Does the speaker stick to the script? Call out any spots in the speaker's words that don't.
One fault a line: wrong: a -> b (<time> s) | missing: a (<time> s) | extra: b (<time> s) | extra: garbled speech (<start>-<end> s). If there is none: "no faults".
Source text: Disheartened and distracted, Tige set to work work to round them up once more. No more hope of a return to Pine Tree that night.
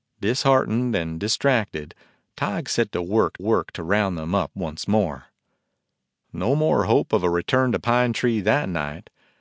no faults